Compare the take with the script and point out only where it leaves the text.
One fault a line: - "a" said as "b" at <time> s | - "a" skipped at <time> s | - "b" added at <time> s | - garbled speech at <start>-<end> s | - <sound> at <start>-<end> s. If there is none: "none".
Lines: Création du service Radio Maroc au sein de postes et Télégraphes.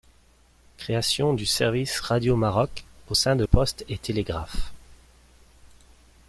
none